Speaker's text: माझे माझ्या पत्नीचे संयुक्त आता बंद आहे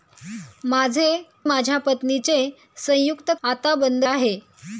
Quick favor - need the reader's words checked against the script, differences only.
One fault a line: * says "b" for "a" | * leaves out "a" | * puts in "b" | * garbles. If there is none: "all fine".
all fine